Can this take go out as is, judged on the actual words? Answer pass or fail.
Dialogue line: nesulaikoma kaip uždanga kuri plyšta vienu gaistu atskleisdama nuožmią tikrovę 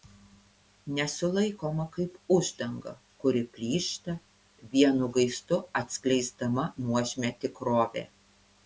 pass